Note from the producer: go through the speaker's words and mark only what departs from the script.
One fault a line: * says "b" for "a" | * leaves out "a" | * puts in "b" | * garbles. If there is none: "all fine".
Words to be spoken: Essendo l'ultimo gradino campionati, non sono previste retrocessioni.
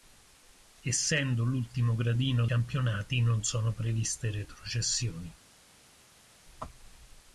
all fine